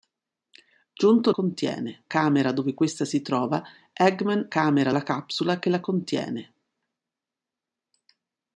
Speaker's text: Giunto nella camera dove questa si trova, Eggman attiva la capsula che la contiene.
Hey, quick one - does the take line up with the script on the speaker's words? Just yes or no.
no